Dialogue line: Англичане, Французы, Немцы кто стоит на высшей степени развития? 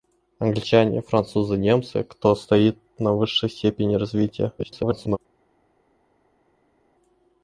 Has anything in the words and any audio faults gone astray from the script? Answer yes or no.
yes